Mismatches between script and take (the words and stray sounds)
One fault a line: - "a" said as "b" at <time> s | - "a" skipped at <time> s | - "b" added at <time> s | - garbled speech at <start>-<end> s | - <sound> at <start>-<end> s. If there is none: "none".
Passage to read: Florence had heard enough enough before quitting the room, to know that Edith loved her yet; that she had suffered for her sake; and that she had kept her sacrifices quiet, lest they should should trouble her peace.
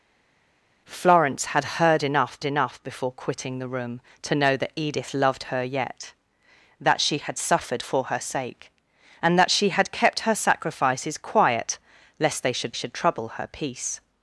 none